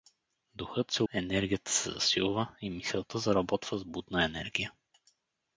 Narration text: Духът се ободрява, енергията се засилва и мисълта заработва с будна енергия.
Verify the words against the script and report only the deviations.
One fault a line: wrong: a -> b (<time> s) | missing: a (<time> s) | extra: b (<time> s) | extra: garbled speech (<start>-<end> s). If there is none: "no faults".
missing: ободрява (1.0 s)